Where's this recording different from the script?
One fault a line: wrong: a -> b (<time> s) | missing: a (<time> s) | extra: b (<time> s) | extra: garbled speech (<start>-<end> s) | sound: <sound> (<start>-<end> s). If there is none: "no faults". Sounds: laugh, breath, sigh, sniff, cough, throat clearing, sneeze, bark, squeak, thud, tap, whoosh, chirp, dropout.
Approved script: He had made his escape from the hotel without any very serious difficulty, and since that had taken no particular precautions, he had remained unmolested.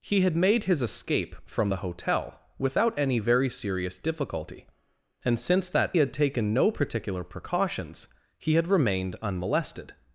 no faults